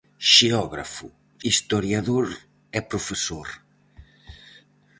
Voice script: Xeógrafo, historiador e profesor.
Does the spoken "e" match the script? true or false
true